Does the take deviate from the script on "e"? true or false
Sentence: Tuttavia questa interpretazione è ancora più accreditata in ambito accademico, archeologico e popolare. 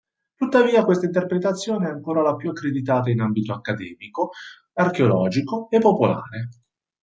false